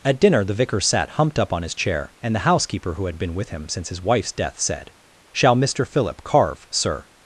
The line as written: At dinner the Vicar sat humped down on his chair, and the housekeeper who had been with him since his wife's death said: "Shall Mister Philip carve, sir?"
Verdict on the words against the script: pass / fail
fail